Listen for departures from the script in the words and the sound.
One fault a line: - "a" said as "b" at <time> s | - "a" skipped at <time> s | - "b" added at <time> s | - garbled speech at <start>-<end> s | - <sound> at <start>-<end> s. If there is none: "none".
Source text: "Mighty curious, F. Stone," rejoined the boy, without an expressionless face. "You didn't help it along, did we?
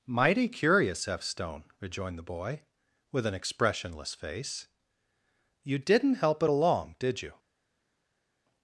- "without" said as "with" at 3.1 s
- "we" said as "you" at 7.2 s